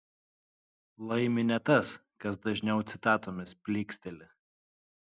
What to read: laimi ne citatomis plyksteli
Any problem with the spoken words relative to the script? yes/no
yes